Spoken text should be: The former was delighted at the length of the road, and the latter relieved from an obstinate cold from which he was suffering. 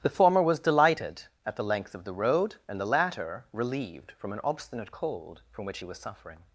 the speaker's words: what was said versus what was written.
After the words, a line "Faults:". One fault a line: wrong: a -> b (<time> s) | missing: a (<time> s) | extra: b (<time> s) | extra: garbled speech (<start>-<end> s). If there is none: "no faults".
The former was delighted at the length of the road, and the latter relieved from an obstinate cold from which he was suffering.
Faults:
no faults